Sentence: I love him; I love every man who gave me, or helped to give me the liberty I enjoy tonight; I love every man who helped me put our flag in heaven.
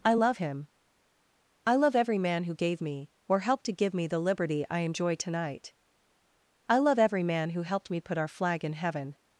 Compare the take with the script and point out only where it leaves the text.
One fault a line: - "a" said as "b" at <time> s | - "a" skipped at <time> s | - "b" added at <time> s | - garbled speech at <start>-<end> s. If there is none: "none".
none